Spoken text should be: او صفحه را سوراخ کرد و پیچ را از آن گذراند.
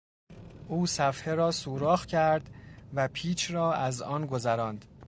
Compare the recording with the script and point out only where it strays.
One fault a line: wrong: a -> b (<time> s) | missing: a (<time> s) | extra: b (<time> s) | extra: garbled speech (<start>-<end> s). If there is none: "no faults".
no faults